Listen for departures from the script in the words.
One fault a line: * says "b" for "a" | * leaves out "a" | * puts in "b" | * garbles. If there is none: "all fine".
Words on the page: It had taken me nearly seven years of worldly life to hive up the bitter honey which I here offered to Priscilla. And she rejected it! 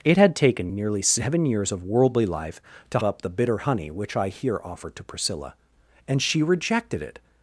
* leaves out "me"
* leaves out "hive"